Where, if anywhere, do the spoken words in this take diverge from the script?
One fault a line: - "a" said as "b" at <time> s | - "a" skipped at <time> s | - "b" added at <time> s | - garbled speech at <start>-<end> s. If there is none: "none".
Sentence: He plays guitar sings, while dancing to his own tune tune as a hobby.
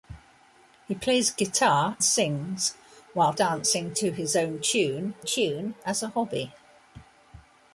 none